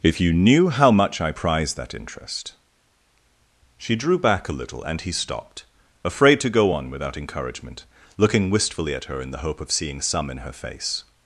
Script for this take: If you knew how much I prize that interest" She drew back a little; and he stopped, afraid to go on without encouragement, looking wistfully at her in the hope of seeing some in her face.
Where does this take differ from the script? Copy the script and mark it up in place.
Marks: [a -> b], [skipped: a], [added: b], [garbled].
If you knew how much I prize that interest" She drew back a little; and he stopped, afraid to go on without encouragement, looking wistfully at her in the hope of seeing some in her face.